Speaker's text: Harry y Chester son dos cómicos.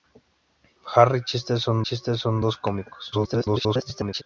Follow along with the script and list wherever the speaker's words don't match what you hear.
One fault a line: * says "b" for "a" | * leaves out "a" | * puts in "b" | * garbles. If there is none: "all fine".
* puts in "Chester son"
* garbles